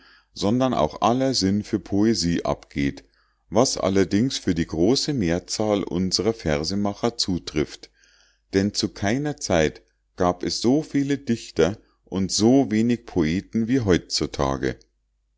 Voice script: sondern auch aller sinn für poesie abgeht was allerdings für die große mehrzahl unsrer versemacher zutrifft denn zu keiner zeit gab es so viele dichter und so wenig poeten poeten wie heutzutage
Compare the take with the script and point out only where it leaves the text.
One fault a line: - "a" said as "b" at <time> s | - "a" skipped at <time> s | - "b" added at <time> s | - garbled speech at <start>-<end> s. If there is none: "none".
- "poeten" skipped at 13.7 s